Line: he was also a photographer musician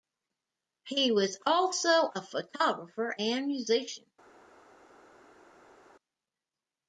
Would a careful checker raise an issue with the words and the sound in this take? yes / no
yes